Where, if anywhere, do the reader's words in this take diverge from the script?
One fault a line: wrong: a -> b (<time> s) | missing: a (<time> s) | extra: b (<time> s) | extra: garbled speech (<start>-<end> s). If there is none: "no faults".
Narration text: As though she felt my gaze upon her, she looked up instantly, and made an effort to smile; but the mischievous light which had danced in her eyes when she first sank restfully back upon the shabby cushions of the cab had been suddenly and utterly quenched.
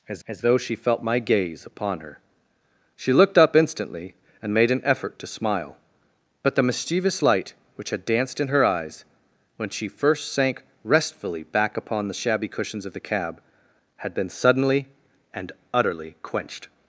extra: as (0.3 s)